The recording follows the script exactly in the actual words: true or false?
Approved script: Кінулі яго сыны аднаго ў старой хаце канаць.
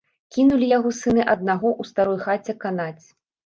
true